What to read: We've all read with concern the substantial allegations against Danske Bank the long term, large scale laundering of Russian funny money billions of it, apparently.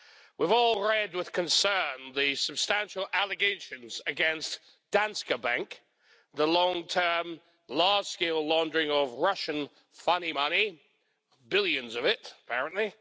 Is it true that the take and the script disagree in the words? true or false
false